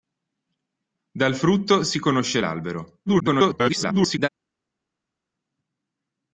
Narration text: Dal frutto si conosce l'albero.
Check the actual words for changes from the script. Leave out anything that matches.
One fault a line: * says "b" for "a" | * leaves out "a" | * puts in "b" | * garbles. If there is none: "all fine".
* garbles